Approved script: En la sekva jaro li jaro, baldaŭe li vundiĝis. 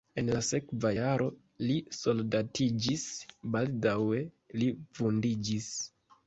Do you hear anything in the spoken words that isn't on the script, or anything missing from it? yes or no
yes